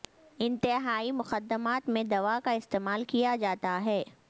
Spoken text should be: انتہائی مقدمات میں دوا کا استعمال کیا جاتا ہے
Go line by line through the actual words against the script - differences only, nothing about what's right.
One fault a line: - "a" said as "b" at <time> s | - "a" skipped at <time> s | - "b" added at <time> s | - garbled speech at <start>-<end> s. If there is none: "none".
none